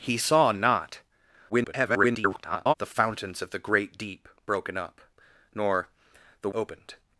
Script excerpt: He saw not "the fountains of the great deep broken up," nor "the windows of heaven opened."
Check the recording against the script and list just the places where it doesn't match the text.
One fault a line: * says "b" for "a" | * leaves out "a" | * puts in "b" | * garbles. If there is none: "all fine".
* garbles
* leaves out "windows of heaven"